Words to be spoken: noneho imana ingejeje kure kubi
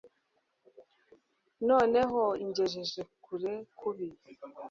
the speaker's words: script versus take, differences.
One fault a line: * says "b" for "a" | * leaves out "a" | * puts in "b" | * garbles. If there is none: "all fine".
* leaves out "imana"